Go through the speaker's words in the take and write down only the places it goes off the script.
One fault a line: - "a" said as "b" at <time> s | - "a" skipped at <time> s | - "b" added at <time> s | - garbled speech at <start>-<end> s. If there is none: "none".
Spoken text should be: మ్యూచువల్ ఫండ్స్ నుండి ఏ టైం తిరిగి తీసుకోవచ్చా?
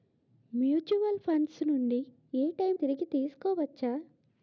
none